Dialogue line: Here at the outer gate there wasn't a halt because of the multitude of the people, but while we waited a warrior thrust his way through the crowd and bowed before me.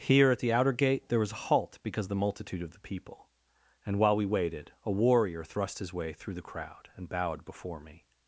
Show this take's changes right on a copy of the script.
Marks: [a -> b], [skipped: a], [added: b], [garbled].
Here at the outer gate there [wasn't -> was] a halt because of the multitude of the people, [but -> and] while we waited a warrior thrust his way through the crowd and bowed before me.